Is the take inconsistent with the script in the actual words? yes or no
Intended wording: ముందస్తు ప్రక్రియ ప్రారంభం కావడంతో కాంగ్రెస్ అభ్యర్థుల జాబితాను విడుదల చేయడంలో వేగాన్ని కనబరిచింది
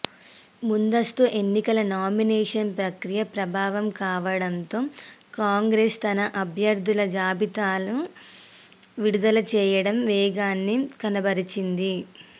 yes